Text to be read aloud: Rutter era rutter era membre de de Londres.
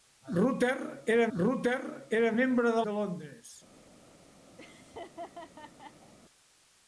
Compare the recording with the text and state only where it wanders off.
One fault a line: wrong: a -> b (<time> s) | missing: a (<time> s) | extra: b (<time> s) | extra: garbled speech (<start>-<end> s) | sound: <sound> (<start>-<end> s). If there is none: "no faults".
sound: laugh (4.6-6.1 s)